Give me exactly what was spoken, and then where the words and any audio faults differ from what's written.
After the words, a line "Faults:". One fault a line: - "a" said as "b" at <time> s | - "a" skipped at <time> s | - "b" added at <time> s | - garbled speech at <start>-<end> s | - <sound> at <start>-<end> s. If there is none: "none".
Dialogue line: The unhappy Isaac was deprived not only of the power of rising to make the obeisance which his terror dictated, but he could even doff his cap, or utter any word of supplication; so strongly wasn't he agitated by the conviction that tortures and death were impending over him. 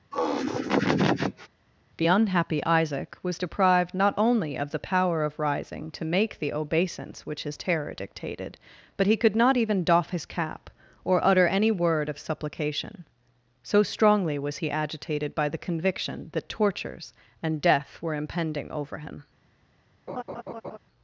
The unhappy Isaac was deprived not only of the power of rising to make the obeisance which his terror dictated, but he could not even doff his cap, or utter any word of supplication; so strongly was he agitated by the conviction that tortures and death were impending over him.
Faults:
- laugh at 0.1-1.5 s
- "not" added at 9.3 s
- "wasn't" said as "was" at 14.4 s
- laugh at 20.1-20.8 s